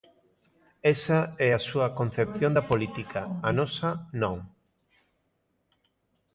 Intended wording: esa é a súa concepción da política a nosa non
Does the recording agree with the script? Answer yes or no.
yes